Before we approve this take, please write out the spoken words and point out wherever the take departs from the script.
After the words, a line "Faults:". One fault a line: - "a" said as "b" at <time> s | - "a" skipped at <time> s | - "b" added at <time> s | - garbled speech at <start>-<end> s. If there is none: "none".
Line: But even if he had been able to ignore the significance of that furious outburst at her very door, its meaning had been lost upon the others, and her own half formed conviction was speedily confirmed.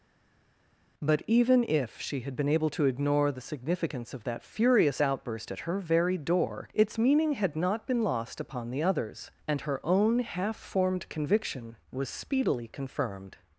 But even if she had been able to ignore the significance of that furious outburst at her very door, its meaning had not been lost upon the others, and her own half formed conviction was speedily confirmed.
Faults:
- "he" said as "she" at 2.0 s
- "not" added at 7.5 s